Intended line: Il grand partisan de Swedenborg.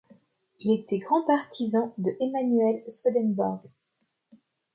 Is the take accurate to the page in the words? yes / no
no